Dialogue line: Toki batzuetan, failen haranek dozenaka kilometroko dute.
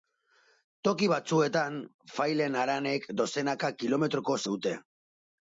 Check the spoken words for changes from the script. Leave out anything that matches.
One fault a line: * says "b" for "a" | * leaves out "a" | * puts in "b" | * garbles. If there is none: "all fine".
all fine